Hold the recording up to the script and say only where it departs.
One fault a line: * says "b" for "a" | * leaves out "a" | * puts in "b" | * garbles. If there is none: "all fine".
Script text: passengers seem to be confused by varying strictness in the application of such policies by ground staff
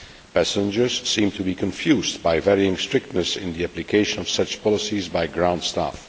all fine